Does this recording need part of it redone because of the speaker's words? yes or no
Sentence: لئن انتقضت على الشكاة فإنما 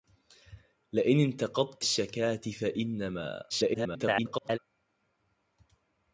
yes